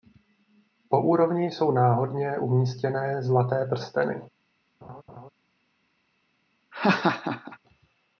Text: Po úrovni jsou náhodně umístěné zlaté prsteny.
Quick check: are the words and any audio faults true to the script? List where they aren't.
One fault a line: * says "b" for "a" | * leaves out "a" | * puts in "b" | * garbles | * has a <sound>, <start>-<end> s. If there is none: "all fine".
* has a laugh, 4.8-5.3 s
* has a laugh, 6.7-7.6 s